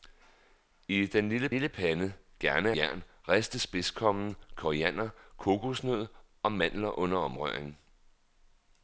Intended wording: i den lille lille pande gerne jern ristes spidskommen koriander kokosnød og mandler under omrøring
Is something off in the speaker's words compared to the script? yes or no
no